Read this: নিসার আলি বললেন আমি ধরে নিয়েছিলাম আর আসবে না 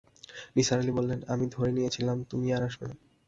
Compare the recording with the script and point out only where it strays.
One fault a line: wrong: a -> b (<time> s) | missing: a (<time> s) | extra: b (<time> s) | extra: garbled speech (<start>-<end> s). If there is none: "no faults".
extra: তুমি (2.2 s)